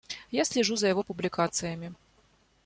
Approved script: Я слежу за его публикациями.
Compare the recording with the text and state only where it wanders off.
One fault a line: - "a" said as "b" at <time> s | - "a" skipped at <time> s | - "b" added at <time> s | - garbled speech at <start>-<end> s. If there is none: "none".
none